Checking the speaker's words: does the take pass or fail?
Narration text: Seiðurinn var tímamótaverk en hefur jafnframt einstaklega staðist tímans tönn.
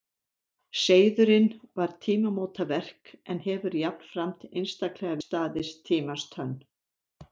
pass